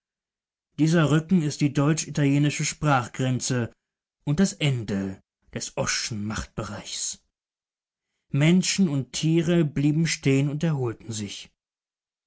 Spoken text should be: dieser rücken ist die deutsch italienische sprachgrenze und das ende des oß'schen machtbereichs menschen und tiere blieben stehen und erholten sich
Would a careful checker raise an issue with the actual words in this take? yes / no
no